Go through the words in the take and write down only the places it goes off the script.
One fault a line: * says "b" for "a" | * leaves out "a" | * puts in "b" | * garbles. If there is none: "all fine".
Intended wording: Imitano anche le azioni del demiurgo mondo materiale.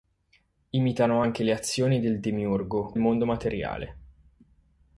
all fine